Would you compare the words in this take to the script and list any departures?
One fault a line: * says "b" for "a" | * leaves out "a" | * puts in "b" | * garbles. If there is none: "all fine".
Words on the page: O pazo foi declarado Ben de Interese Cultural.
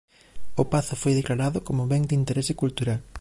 * puts in "como"